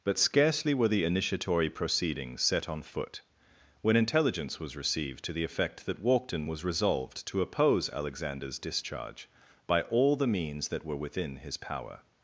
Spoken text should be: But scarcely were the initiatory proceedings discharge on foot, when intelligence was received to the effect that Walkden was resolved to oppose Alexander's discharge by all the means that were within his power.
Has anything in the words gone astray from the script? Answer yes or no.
yes